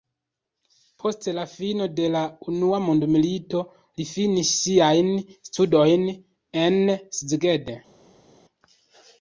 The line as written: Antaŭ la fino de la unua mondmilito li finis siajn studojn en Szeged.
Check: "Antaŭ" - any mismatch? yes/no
yes